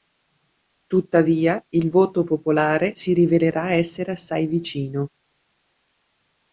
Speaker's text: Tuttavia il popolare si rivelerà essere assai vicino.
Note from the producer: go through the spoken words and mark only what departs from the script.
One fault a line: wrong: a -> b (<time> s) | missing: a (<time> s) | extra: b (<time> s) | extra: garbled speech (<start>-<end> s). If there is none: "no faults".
extra: voto (1.9 s)